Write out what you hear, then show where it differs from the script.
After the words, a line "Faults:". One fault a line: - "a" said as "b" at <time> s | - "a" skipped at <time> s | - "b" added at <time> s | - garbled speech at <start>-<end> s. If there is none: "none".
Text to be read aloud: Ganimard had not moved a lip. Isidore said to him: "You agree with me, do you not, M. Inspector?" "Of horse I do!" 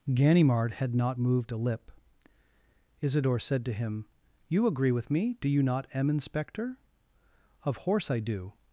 Ganimard had not moved a lip. Isidore said to him: "You agree with me, do you not, M. Inspector?" "Of horse I do!"
Faults:
none